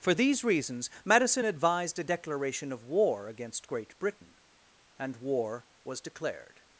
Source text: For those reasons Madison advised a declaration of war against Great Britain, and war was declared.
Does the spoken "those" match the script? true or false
false